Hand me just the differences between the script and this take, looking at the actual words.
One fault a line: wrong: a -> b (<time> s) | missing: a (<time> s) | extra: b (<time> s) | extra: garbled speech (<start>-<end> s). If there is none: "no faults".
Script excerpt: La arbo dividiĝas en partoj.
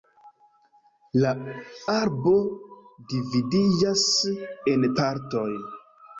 no faults